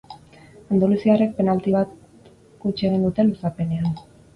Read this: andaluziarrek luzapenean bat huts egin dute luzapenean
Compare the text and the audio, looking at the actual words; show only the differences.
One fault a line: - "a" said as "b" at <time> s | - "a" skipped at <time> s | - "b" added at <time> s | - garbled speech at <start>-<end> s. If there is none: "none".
- "luzapenean" said as "penalti" at 1.4 s